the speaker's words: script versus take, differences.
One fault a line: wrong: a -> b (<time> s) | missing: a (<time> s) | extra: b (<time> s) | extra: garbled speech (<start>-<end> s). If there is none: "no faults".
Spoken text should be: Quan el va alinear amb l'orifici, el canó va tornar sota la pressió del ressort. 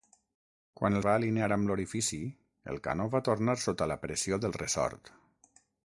no faults